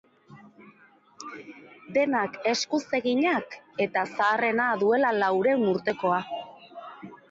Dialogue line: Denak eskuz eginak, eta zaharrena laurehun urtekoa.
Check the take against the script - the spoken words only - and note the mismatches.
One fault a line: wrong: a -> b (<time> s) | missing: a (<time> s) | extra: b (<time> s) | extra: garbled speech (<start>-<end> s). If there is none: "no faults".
extra: duela (4.8 s)